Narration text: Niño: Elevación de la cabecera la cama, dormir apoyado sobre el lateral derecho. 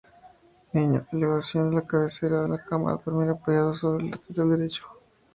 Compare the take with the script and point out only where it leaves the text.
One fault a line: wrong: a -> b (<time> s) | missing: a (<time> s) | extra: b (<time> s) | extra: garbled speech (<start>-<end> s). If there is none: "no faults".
no faults